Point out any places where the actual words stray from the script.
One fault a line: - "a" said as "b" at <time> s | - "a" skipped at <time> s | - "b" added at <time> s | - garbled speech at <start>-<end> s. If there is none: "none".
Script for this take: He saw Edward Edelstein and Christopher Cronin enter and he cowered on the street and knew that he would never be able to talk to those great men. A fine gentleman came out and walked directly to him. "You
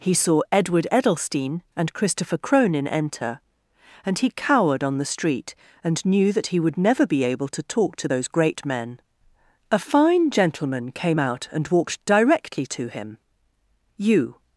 none